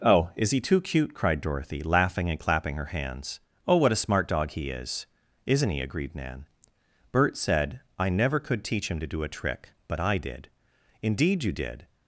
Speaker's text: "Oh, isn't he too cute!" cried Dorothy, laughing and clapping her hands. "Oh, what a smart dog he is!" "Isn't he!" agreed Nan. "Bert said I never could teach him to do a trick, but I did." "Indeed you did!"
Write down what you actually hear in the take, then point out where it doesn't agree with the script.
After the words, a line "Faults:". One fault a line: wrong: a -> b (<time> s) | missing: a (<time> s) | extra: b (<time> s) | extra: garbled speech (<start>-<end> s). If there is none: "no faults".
"Oh, is he too cute!" cried Dorothy, laughing and clapping her hands. "Oh, what a smart dog he is!" "Isn't he!" agreed Nan. "Bert said I never could teach him to do a trick, but I did." "Indeed you did!"
Faults:
wrong: isn't -> is (0.4 s)